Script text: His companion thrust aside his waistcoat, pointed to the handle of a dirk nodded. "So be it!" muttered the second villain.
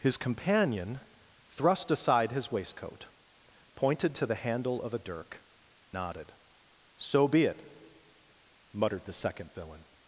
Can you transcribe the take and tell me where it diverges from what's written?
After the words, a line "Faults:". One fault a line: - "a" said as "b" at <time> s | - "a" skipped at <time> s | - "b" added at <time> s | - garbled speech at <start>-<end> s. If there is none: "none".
His companion thrust aside his waistcoat, pointed to the handle of a dirk nodded. "So be it!" muttered the second villain.
Faults:
none